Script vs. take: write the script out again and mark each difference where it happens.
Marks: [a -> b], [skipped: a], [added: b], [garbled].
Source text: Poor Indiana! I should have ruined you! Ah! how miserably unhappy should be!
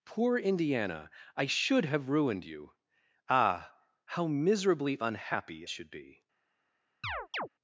Poor Indiana! I should have ruined you! Ah! how miserably unhappy should be!